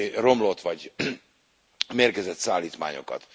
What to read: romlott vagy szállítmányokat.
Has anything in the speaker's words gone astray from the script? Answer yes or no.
yes